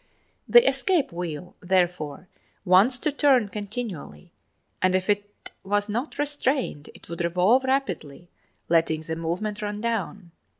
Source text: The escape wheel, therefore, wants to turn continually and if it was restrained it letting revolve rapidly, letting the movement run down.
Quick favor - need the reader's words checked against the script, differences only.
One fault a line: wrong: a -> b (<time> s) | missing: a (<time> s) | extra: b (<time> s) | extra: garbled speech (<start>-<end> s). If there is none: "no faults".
extra: not (5.9 s)
wrong: letting -> would (7.1 s)